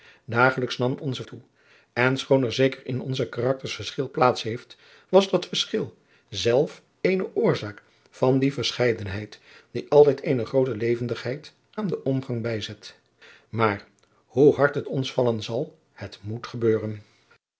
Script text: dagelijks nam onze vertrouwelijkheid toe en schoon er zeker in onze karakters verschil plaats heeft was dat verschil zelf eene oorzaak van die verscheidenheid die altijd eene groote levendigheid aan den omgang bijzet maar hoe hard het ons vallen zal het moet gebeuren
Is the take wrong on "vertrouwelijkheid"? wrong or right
wrong